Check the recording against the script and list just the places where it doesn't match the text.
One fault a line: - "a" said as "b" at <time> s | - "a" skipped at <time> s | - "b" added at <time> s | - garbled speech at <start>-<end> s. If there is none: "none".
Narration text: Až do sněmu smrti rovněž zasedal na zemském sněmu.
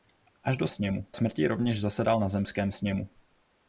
none